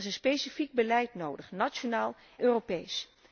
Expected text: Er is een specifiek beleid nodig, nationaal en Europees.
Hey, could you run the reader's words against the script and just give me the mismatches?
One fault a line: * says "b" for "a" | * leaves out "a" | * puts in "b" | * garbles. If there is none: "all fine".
* leaves out "en"